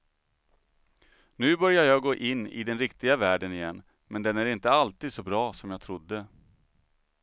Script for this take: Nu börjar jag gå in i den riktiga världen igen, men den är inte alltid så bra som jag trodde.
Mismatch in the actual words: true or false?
false